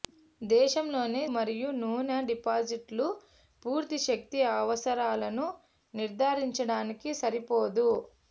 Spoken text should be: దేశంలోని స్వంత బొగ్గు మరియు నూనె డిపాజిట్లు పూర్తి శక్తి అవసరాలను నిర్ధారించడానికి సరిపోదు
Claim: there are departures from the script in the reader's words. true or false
true